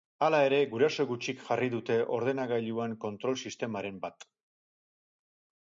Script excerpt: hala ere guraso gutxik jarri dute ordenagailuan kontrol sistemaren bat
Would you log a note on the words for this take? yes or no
no